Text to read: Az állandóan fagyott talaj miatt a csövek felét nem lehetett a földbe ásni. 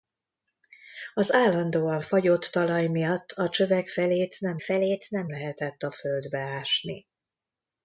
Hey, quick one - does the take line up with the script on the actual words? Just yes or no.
no